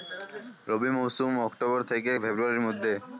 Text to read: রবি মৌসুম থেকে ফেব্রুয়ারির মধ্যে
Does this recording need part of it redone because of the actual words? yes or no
yes